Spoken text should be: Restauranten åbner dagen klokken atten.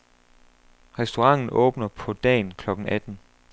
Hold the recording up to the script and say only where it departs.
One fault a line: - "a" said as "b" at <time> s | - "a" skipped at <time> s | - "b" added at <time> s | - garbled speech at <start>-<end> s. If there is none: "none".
- "på" added at 1.9 s